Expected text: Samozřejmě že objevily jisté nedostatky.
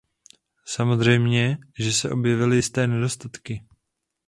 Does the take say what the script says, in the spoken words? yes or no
no